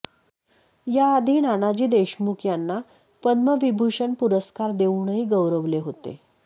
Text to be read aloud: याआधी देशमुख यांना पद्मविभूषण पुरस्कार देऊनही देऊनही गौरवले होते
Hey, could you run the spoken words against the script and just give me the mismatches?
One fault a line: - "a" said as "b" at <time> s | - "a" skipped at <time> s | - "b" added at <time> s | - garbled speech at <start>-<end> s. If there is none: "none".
- "नानाजी" added at 1.4 s
- "देऊनही" skipped at 5.2 s